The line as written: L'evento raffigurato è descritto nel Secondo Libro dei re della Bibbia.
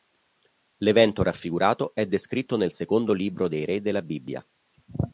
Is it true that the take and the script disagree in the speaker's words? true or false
false